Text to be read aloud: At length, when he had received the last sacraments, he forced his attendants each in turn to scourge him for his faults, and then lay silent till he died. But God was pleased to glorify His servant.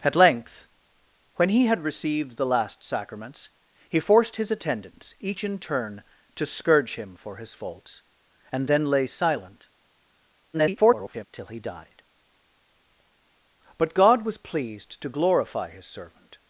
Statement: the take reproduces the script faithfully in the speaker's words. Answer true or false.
false